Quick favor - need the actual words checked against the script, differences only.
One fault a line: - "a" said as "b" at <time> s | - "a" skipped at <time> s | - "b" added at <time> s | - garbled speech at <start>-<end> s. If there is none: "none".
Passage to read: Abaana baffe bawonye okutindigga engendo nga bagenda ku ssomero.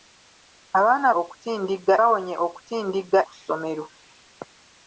- "baffe" said as "okutindigga" at 1.2 s
- "engendo nga bagenda" skipped at 3.2 s